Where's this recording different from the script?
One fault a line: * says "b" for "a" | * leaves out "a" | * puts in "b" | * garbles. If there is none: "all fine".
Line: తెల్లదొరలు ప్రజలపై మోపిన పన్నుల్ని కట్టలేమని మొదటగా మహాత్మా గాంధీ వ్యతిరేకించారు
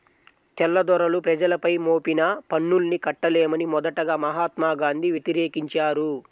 all fine